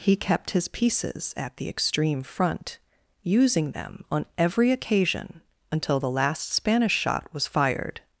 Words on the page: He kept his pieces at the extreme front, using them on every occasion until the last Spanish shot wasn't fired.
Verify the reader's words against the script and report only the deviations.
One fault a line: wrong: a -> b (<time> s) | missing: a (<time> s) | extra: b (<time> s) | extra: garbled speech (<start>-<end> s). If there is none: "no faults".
wrong: wasn't -> was (7.3 s)